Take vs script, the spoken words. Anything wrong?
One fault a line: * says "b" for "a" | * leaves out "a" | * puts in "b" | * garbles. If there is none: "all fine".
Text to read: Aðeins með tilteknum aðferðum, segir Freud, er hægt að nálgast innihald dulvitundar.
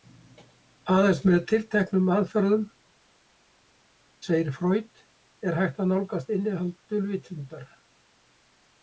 all fine